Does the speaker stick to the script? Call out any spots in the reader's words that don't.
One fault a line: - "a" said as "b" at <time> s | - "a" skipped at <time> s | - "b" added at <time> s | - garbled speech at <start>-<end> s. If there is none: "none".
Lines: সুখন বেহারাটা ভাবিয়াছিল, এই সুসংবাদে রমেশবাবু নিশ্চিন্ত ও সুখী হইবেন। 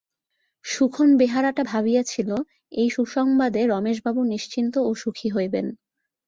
none